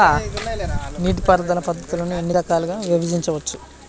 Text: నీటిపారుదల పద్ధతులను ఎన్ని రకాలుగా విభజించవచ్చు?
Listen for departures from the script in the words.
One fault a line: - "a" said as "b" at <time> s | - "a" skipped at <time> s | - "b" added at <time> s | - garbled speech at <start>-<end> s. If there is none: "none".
none